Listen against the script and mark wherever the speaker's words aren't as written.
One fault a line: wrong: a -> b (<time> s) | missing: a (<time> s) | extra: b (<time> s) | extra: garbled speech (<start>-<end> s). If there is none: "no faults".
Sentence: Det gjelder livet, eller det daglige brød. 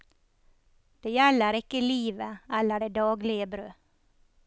extra: ikke (1.6 s)